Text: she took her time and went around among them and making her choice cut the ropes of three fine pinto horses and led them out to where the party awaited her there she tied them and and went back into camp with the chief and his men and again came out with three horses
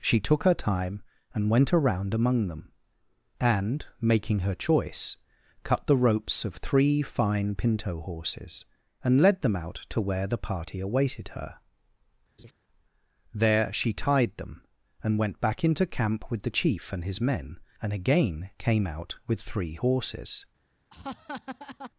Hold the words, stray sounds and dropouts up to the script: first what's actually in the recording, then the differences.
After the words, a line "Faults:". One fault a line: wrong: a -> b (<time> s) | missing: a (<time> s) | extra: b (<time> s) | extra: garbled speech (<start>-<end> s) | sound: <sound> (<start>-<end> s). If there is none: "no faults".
she took her time and went around among them and making her choice cut the ropes of three fine pinto horses and led them out to where the party awaited her there she tied them and went back into camp with the chief and his men and again came out with three horses
Faults:
sound: laugh (12.4-12.5 s)
missing: and (15.2 s)
sound: laugh (20.9-21.9 s)